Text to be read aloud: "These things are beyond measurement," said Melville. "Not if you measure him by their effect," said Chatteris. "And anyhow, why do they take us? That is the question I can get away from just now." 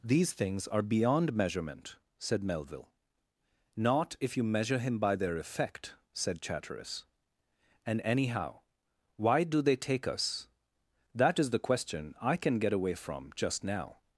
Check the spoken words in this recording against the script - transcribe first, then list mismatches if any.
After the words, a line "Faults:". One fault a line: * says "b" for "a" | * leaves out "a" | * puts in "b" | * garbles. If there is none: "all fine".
"These things are beyond measurement," said Melville. "Not if you measure him by their effect," said Chatteris. "And anyhow, why do they take us? That is the question I can get away from just now."
Faults:
all fine